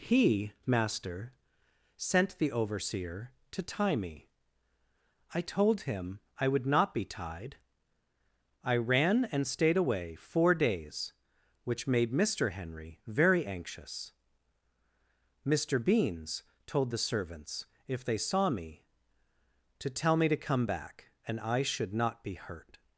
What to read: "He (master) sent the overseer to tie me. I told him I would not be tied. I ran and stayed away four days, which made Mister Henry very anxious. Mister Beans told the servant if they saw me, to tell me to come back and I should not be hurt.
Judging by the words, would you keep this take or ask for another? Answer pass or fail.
fail